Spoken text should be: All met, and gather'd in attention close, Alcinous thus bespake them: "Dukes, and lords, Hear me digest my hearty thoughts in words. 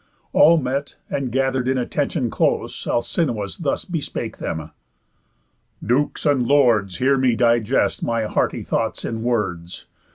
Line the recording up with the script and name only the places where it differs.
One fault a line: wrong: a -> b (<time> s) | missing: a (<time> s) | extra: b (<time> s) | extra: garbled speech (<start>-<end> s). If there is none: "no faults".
no faults